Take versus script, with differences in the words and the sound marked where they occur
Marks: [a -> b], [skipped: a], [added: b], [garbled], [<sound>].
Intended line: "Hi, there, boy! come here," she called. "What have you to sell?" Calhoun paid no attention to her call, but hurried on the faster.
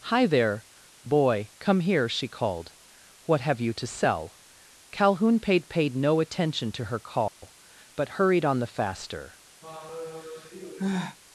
"Hi, there, boy! come here," she called. "What have you to sell?" Calhoun paid [added: paid] no attention to her call, [dropout] but hurried on the faster. [sigh]